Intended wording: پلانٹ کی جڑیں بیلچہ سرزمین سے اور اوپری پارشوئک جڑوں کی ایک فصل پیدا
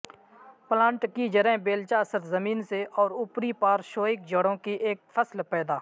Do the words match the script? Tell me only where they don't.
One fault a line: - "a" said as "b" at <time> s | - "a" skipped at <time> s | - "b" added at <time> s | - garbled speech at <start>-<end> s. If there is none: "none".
none